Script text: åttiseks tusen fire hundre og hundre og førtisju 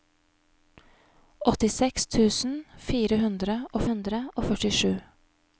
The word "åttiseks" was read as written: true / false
true